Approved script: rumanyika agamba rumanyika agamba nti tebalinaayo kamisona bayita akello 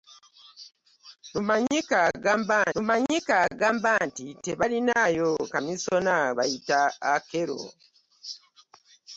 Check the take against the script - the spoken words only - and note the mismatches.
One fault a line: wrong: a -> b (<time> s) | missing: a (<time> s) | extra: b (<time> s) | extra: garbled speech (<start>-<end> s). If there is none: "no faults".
no faults